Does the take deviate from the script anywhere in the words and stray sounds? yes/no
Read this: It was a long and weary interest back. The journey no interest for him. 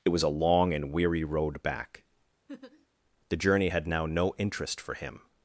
yes